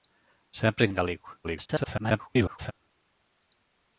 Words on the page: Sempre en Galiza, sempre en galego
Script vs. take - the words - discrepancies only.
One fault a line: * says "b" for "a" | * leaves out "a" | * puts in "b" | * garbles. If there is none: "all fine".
* leaves out "Galiza sempre"
* garbles